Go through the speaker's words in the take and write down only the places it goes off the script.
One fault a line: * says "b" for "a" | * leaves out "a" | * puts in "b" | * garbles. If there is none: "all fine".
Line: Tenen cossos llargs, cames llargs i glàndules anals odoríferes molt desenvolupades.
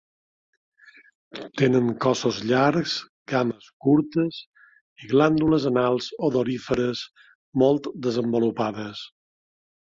* says "curtes" for "llargs"